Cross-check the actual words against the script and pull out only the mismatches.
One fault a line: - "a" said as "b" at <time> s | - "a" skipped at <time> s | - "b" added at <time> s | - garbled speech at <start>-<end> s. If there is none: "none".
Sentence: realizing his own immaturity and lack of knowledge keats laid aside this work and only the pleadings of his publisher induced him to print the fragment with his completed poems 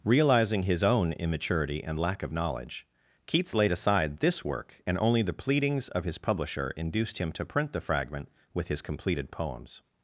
none